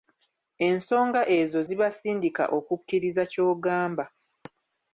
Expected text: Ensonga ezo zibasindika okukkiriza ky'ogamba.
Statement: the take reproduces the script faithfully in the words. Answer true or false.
true